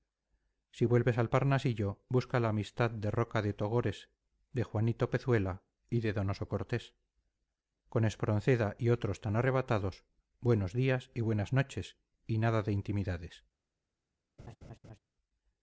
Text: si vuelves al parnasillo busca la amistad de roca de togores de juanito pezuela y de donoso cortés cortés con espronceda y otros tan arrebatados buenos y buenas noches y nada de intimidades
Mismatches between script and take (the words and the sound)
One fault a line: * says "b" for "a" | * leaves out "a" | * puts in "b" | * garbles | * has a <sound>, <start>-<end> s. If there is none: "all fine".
* leaves out "cortés"
* puts in "días"
* has a laugh, 14.4-15.0 s